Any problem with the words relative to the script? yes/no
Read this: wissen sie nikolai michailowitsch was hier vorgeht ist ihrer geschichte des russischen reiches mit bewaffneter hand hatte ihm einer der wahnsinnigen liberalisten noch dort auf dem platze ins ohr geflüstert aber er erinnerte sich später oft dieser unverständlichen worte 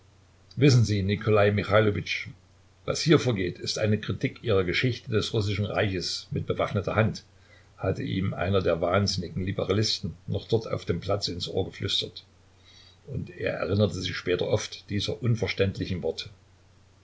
yes